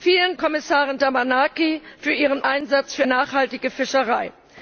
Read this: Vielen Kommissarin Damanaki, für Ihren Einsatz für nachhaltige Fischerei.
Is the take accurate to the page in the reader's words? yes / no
yes